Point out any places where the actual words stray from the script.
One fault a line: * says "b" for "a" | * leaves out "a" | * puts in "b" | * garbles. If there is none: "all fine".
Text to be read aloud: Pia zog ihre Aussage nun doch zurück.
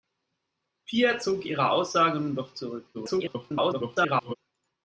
* garbles